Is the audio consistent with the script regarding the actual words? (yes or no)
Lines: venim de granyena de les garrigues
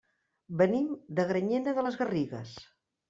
yes